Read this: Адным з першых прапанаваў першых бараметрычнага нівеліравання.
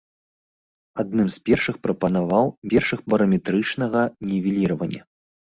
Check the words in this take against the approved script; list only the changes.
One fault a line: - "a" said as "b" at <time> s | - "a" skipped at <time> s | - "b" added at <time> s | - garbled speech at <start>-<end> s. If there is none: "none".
none